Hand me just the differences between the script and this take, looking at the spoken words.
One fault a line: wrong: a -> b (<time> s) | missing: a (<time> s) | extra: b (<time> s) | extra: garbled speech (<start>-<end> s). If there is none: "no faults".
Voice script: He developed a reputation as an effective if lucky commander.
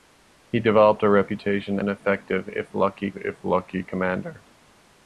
missing: as (1.8 s)
extra: if lucky (3.2 s)